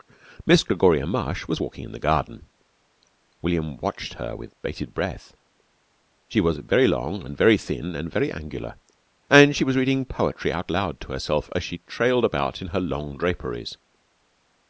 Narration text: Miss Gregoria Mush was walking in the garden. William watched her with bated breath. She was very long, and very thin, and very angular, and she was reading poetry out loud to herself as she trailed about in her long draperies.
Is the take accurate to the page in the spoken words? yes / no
yes